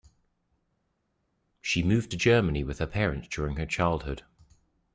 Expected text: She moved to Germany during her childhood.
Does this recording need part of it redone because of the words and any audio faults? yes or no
yes